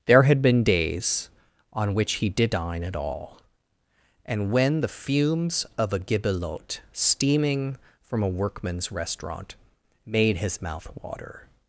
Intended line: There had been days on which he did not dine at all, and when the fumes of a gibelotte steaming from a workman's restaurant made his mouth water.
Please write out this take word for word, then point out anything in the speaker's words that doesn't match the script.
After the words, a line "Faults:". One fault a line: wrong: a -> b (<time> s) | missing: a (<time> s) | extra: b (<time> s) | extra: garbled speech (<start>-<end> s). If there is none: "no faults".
There had been days on which he did dine at all, and when the fumes of a gibelotte steaming from a workman's restaurant made his mouth water.
Faults:
missing: not (2.5 s)